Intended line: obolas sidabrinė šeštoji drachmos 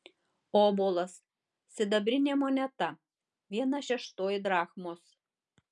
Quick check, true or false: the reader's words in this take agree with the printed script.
false